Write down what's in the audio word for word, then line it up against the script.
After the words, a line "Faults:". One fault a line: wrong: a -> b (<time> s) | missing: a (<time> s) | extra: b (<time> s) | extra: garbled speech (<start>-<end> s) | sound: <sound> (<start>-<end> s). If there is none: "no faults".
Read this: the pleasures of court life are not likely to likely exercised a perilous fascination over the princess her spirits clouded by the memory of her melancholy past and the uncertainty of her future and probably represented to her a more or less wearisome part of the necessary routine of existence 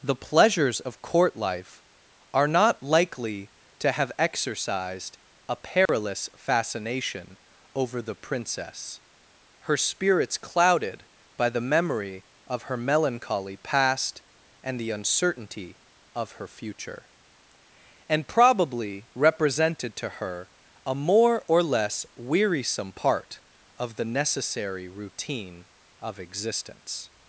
the pleasures of court life are not likely to have exercised a perilous fascination over the princess her spirits clouded by the memory of her melancholy past and the uncertainty of her future and probably represented to her a more or less wearisome part of the necessary routine of existence
Faults:
wrong: likely -> have (3.9 s)
sound: dropout (5.9-5.9 s)